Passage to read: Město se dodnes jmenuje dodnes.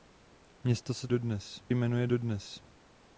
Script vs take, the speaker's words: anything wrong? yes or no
no